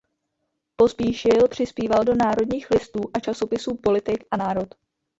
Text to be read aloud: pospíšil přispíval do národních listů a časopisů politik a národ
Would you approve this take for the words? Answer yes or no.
yes